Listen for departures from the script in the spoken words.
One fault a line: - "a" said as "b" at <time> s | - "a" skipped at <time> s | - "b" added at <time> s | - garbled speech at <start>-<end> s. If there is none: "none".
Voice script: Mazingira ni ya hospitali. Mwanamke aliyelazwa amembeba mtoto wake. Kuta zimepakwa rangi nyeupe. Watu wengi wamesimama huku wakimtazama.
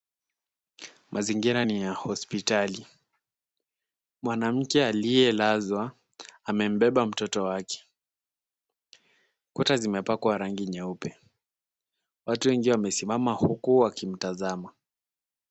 none